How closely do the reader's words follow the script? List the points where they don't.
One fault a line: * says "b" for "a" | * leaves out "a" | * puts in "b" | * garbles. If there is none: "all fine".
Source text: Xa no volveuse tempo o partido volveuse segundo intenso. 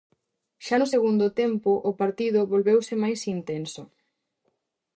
* says "segundo" for "volveuse"
* says "máis" for "segundo"